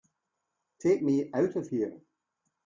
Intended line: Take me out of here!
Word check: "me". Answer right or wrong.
right